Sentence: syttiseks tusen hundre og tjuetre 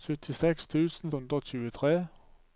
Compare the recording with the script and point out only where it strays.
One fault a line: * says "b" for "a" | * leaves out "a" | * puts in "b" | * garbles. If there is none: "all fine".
all fine